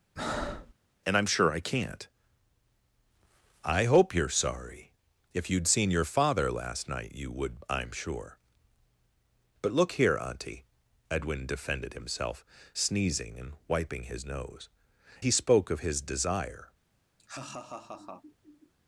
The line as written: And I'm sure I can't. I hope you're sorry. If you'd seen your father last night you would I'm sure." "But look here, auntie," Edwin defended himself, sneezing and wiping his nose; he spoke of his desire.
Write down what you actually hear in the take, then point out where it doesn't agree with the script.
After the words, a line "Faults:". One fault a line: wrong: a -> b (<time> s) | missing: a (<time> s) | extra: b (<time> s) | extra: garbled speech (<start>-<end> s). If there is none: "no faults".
And I'm sure I can't. I hope you're sorry. If you'd seen your father last night you would I'm sure." "But look here, auntie," Edwin defended himself, sneezing and wiping his nose; he spoke of his desire.
Faults:
no faults